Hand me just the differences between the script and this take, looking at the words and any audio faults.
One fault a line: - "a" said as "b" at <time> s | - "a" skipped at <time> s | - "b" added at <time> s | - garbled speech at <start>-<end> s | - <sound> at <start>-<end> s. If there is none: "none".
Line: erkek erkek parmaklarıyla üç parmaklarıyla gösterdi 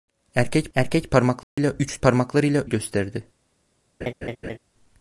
- dropout at 1.4-1.6 s
- laugh at 4.0-4.6 s